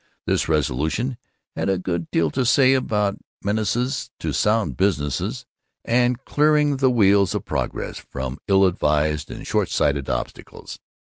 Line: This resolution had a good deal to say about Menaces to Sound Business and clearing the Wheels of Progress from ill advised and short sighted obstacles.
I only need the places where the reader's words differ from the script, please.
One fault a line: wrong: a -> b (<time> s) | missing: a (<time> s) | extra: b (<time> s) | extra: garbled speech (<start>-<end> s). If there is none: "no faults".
no faults